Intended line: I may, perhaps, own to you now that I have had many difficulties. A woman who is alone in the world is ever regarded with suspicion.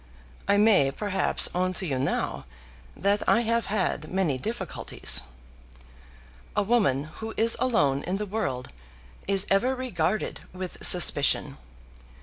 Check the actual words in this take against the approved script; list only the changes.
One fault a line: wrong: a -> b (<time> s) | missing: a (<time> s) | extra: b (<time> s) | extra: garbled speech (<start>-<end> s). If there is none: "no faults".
no faults